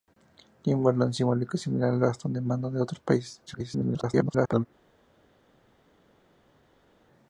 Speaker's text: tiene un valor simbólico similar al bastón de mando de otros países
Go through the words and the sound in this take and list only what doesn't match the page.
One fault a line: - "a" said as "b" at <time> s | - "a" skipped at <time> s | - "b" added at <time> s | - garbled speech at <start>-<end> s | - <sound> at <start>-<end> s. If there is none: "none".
- garbled speech at 3.5-4.7 s